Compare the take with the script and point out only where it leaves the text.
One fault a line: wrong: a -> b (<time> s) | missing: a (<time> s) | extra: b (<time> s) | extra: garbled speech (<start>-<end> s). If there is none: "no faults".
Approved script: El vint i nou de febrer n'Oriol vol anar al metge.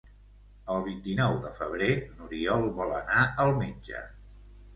no faults